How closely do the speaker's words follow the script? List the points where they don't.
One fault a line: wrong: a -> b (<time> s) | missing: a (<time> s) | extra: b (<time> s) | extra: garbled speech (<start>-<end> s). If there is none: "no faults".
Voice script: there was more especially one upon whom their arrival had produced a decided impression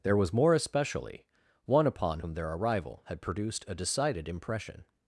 no faults